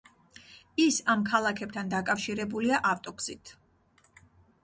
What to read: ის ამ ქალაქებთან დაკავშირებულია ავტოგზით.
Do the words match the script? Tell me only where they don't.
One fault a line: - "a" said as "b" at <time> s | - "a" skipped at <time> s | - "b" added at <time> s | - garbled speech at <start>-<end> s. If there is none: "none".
none